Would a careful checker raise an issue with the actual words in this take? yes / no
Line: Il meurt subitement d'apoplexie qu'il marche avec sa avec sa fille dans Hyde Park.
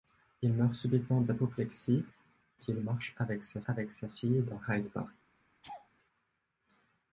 no